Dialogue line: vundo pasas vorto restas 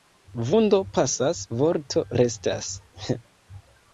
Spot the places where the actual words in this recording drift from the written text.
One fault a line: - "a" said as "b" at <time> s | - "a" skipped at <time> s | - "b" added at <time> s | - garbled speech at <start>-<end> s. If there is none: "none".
none